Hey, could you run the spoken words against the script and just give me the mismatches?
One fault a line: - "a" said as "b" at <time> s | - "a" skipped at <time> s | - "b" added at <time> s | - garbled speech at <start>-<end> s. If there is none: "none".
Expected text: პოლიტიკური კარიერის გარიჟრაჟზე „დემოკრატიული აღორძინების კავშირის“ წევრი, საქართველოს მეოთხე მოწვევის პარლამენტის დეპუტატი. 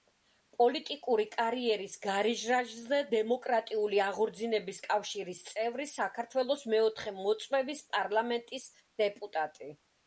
none